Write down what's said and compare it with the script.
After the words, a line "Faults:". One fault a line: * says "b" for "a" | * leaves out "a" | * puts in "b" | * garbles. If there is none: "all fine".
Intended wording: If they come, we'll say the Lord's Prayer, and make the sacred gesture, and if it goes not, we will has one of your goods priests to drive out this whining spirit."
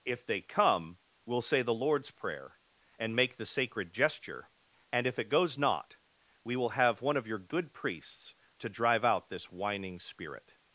If they come, we'll say the Lord's Prayer, and make the sacred gesture, and if it goes not, we will have one of your good priests to drive out this whining spirit."
Faults:
* says "have" for "has"
* says "good" for "goods"